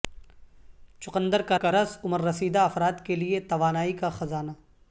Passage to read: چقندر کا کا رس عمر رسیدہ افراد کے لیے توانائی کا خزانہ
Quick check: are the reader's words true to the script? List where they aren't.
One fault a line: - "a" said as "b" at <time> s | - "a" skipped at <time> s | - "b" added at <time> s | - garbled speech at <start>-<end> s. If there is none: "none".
none